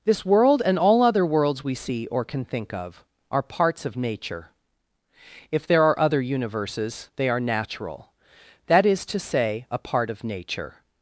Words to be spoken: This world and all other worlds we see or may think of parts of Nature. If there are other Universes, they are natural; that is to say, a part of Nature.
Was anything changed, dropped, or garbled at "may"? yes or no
yes